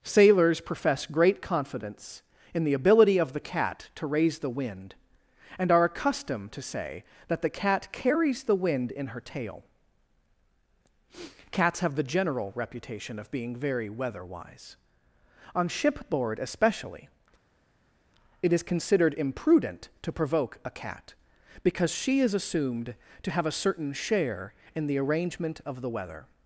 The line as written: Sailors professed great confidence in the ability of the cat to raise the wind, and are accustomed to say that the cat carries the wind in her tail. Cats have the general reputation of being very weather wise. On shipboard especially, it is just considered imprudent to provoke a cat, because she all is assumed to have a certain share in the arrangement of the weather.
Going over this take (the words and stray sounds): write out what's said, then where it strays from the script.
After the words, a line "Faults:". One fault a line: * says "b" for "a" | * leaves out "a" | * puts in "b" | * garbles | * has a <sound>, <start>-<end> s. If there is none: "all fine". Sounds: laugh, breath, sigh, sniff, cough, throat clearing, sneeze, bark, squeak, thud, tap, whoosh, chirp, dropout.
Sailors profess great confidence in the ability of the cat to raise the wind, and are accustomed to say that the cat carries the wind in her tail. Cats have the general reputation of being very weather wise. On shipboard especially, it is considered imprudent to provoke a cat, because she is assumed to have a certain share in the arrangement of the weather.
Faults:
* says "profess" for "professed"
* leaves out "just"
* leaves out "all"